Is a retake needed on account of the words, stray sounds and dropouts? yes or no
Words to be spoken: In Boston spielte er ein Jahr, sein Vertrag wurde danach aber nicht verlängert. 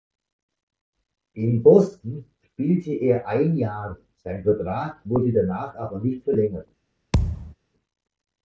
yes